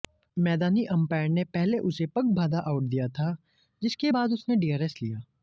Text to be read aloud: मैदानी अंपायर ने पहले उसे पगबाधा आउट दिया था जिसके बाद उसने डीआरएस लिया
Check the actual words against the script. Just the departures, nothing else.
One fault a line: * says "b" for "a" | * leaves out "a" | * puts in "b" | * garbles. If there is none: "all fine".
all fine